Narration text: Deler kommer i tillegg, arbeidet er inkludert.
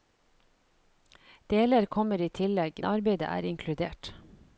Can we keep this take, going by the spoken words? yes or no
yes